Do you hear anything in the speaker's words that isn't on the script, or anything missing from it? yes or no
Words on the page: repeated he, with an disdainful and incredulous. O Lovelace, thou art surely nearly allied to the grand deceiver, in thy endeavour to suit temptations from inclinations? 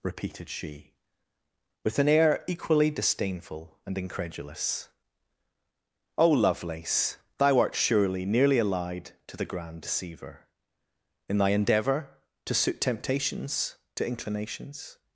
yes